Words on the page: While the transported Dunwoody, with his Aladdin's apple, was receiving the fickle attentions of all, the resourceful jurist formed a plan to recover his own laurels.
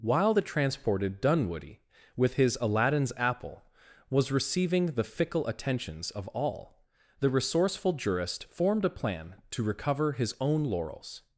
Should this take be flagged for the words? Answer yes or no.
no